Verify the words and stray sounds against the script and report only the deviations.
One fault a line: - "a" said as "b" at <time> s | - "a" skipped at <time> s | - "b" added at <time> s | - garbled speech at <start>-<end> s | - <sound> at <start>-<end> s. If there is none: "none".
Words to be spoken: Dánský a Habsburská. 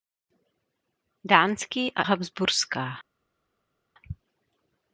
none